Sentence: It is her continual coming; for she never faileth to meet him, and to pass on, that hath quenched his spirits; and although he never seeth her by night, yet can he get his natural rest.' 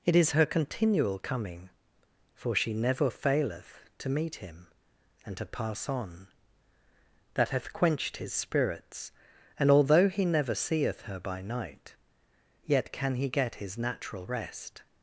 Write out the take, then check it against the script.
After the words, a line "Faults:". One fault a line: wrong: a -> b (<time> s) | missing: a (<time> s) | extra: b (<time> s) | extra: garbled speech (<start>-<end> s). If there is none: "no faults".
It is her continual coming; for she never faileth to meet him, and to pass on, that hath quenched his spirits; and although he never seeth her by night, yet can he get his natural rest.'
Faults:
no faults